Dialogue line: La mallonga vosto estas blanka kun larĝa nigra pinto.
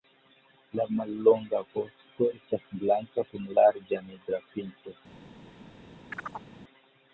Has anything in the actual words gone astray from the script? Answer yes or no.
no